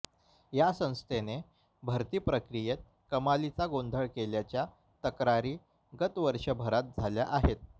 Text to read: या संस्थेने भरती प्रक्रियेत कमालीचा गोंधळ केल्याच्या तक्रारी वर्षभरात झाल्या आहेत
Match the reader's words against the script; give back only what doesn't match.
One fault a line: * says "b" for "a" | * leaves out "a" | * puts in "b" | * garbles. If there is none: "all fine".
* puts in "गत"